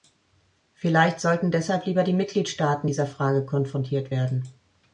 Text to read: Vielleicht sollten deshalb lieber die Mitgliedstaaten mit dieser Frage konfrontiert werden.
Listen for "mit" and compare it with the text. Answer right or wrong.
wrong